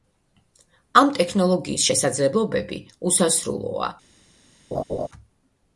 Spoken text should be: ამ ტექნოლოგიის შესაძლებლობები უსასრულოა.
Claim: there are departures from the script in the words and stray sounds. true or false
true